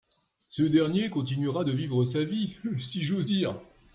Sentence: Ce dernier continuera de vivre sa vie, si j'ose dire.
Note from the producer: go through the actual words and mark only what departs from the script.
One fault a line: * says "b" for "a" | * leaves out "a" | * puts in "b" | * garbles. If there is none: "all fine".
all fine